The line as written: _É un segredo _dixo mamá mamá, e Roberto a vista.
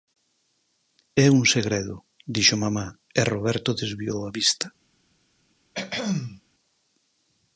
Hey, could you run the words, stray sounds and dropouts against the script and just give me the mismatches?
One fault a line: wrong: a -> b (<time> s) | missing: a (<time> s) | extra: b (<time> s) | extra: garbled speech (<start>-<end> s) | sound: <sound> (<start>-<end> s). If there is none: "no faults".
missing: mamá (2.9 s)
extra: desviou (3.8 s)
sound: throat clearing (5.7-6.4 s)